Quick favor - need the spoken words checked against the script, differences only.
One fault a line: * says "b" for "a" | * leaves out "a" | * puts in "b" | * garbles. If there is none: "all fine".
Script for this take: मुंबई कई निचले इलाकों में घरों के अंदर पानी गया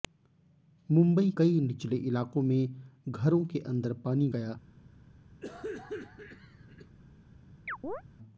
all fine